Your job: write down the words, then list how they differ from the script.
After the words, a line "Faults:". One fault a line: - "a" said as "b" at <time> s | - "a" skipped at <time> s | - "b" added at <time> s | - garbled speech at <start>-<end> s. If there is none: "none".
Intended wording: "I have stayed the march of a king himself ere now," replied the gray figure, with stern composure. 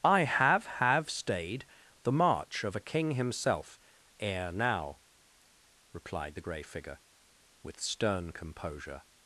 "I have have stayed the march of a king himself ere now," replied the gray figure, with stern composure.
Faults:
- "have" added at 0.7 s